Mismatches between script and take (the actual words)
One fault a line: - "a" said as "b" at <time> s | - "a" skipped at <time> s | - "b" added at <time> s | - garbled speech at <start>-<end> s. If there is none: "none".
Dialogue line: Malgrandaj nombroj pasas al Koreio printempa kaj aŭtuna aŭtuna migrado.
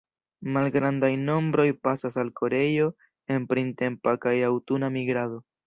- "en" added at 3.4 s
- "aŭtuna" skipped at 4.9 s